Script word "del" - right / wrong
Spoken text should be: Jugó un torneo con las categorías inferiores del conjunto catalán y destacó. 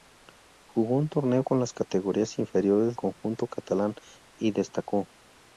wrong